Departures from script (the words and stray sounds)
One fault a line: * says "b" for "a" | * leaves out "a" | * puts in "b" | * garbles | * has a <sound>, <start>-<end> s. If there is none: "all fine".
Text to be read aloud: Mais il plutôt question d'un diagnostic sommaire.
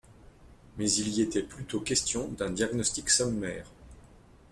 * puts in "y était"